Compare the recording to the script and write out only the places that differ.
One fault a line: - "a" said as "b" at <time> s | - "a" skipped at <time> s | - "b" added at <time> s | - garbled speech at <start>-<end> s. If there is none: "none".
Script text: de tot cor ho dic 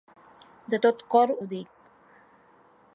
none